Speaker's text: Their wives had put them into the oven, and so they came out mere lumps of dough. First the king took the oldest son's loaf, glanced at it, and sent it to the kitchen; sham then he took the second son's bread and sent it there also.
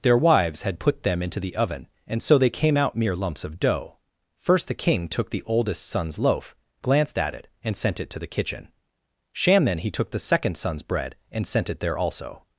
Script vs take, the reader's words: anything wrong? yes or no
no